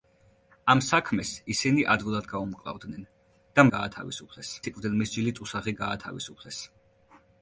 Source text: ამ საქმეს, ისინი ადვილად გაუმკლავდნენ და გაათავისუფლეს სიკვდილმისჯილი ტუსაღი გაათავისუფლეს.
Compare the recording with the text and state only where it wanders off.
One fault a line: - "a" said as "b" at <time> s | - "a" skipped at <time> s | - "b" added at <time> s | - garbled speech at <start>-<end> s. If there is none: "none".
none